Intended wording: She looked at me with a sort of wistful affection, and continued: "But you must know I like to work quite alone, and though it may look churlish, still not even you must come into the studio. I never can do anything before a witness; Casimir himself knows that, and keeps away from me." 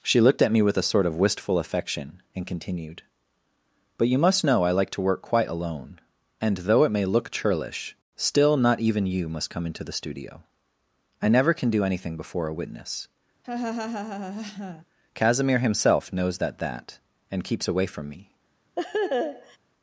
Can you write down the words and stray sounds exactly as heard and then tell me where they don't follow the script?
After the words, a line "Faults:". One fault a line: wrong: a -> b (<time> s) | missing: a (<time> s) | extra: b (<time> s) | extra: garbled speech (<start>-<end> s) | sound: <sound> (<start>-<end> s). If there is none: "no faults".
She looked at me with a sort of wistful affection, and continued: "But you must know I like to work quite alone, and though it may look churlish, still not even you must come into the studio. I never can do anything before a witness; Casimir himself knows that that, and keeps away from me."
Faults:
sound: laugh (13.4-14.9 s)
extra: that (16.6 s)
sound: laugh (18.8-19.6 s)